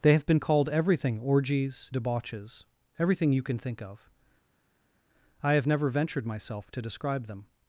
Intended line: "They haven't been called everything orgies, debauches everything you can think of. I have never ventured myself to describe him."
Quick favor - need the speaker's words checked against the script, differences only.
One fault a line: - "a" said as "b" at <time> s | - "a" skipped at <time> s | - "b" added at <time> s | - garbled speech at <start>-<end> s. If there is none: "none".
- "haven't" said as "have" at 0.1 s
- "him" said as "them" at 7.3 s